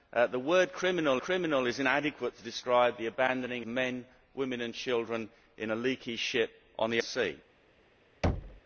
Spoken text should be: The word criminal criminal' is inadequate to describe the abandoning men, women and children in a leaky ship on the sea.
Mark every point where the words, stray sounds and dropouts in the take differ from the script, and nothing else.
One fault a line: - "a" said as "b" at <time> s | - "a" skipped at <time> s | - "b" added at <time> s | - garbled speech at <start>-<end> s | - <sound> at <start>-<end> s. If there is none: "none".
- thud at 8.2-8.6 s